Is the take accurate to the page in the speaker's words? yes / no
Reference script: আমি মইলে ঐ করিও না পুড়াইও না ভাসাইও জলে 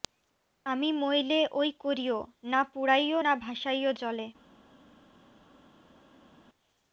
yes